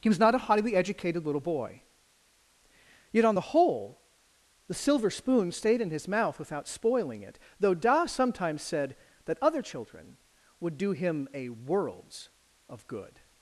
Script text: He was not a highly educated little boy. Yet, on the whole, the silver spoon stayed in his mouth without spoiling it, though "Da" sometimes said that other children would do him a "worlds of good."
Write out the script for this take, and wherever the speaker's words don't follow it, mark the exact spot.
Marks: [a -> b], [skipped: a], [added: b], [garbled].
He was not a highly educated little boy. Yet, on the whole, the silver spoon stayed in his mouth without spoiling it, though "Da" sometimes said that other children would do him a "worlds of good."